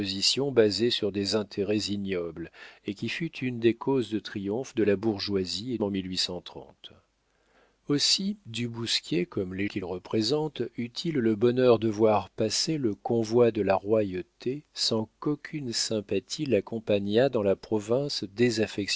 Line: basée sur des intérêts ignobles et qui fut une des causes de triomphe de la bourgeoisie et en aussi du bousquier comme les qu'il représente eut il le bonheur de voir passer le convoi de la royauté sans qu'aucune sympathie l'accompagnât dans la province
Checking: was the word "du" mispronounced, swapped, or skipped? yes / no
no